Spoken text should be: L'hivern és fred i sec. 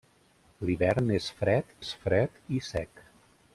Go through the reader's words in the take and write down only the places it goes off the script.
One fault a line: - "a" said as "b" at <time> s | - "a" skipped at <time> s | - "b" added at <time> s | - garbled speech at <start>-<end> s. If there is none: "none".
- "és fred" added at 1.8 s